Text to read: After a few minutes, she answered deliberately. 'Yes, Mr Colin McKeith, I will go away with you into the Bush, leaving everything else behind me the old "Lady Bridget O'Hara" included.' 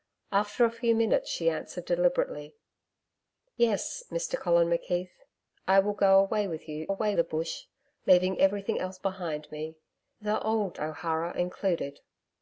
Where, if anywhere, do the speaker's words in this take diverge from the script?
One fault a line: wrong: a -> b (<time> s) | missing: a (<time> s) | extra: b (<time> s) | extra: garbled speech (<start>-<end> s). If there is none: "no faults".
wrong: into -> away (6.9 s)
missing: Lady Bridget (10.8 s)